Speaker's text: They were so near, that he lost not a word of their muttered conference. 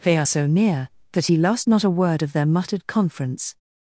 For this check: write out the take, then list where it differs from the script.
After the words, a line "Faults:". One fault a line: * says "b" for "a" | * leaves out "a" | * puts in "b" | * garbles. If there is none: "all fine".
They are so near, that he lost not a word of their muttered conference.
Faults:
* says "are" for "were"